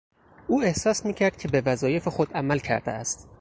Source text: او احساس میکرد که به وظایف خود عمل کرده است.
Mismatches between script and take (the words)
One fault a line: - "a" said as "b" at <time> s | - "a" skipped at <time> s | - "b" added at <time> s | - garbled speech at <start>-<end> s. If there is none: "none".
none